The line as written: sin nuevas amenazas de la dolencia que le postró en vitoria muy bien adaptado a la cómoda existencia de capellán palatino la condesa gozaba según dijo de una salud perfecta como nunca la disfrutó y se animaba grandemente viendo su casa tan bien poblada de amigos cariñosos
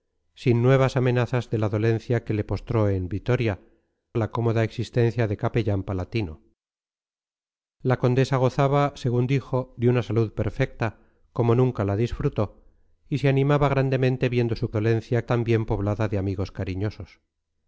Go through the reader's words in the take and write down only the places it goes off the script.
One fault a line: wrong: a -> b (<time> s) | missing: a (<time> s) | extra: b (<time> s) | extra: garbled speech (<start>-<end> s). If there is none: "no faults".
missing: muy bien adaptado (3.6 s)
wrong: casa -> dolencia (14.7 s)